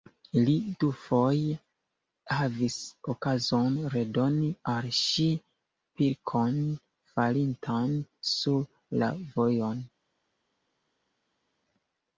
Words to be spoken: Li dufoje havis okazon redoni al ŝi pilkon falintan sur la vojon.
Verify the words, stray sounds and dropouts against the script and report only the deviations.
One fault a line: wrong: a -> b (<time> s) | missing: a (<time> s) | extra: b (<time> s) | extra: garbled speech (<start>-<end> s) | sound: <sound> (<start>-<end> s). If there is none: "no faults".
no faults